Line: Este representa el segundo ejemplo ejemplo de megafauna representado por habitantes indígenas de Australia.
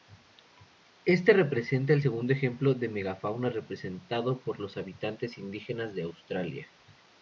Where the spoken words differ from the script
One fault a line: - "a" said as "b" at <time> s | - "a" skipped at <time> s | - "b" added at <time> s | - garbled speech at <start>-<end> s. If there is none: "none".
- "ejemplo" skipped at 2.7 s
- "los" added at 4.6 s